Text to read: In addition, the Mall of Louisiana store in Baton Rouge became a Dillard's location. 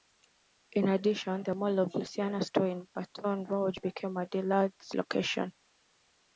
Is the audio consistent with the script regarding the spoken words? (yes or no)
yes